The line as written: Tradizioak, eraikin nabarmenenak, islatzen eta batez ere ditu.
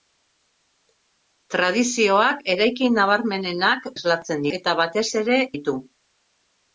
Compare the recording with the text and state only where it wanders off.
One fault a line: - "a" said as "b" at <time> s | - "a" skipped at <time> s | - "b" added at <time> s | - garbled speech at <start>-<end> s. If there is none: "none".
none